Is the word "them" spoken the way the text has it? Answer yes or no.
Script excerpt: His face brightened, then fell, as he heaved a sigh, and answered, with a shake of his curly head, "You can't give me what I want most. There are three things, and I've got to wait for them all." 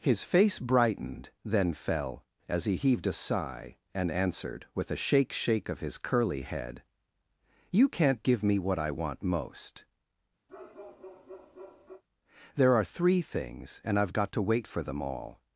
yes